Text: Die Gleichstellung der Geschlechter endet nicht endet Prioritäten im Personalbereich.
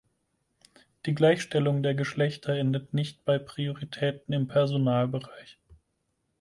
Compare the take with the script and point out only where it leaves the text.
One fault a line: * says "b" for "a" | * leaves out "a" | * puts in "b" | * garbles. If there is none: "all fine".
* says "bei" for "endet"